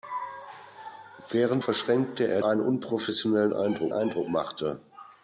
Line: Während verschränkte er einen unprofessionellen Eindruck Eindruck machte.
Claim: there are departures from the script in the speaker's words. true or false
false